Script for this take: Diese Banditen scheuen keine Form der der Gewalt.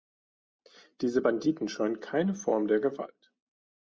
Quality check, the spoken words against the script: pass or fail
fail